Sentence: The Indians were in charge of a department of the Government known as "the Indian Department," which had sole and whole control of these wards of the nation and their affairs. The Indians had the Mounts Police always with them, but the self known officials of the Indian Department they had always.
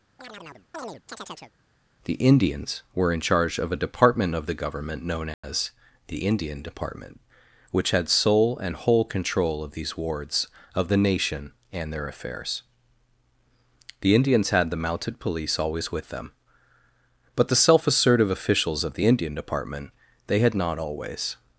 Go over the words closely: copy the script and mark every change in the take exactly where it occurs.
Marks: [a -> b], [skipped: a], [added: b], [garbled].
The Indians were in charge of a department of the Government known as "the Indian Department," which had sole and whole control of these wards of the nation and their affairs. The Indians had the [Mounts -> Mounted] Police always with them, but the self [known -> assertive] officials of the Indian Department they had [added: not] always.